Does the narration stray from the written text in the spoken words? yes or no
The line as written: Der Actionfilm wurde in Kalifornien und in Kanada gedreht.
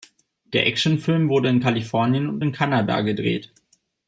no